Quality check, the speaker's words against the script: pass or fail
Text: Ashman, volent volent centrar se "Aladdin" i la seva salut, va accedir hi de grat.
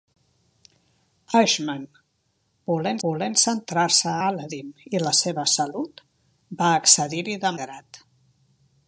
pass